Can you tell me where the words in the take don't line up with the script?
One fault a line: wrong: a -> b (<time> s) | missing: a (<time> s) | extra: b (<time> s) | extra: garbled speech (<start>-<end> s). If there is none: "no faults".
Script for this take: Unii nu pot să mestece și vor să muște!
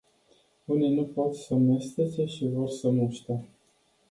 no faults